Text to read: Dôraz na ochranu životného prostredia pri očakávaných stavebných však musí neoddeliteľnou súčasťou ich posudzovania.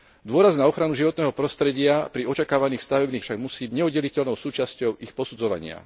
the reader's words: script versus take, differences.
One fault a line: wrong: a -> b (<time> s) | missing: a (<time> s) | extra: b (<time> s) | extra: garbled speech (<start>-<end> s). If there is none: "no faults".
no faults